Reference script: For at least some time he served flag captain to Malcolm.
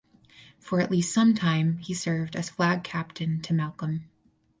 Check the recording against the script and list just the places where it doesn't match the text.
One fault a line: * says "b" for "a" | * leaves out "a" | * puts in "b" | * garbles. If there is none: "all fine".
* puts in "as"